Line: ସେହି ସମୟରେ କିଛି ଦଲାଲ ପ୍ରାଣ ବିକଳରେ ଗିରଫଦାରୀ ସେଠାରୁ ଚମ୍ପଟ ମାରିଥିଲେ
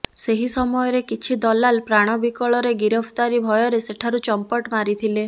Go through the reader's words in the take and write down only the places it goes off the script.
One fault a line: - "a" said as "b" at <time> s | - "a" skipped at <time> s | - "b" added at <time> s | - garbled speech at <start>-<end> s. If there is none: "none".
- "ଭୟରେ" added at 3.5 s